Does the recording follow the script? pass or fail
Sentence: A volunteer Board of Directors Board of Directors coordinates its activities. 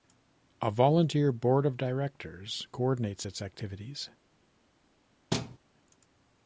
fail